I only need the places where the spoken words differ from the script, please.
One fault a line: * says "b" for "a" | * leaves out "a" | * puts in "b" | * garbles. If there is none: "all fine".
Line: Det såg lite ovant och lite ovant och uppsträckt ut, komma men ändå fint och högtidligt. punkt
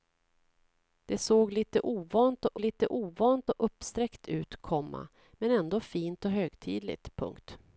all fine